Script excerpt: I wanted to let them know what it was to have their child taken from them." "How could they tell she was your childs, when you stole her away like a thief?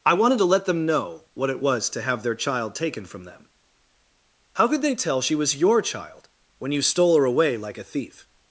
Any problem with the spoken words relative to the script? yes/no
yes